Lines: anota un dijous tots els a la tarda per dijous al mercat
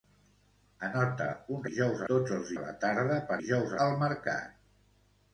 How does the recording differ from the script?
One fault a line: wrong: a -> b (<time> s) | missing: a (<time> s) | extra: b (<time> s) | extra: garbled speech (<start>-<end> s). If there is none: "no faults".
no faults